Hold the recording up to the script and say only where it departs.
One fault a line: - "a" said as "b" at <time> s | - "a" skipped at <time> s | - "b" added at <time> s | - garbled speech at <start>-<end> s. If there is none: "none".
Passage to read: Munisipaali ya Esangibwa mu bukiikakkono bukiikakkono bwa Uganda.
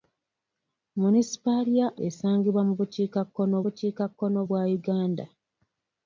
none